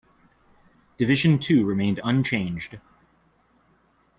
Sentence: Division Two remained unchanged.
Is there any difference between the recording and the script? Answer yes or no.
no